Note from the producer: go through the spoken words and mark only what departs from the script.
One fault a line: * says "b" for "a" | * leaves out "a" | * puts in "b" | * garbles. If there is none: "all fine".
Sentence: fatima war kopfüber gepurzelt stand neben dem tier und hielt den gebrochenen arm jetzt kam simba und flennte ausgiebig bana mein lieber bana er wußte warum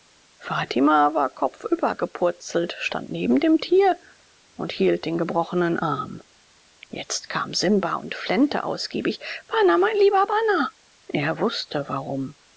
all fine